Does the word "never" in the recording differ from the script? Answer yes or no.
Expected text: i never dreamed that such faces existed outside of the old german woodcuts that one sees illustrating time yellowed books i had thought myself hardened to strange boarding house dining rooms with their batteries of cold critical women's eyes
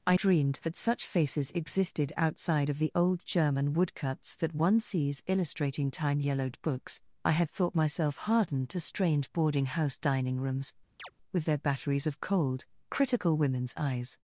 yes